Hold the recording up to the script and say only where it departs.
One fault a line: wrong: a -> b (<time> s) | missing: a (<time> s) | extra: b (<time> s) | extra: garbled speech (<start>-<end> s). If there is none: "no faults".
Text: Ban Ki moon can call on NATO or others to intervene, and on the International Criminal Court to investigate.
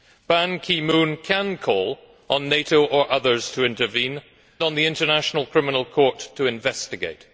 missing: and (4.2 s)